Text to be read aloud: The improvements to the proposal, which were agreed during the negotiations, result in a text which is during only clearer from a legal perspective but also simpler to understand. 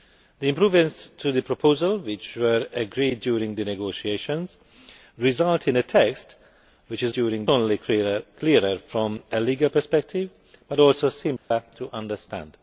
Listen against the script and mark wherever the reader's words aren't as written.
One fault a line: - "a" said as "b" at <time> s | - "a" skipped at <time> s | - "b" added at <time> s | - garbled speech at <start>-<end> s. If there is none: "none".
none